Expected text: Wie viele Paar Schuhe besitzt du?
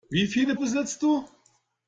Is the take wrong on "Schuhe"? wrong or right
wrong